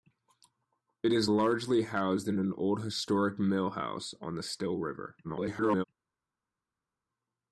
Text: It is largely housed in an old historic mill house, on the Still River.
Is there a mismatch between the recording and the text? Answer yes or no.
yes